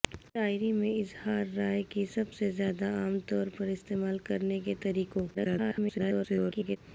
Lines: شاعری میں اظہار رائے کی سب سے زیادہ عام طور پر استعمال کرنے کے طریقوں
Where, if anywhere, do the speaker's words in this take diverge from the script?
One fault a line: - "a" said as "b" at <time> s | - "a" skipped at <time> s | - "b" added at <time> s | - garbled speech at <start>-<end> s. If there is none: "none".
- garbled speech at 5.3-6.8 s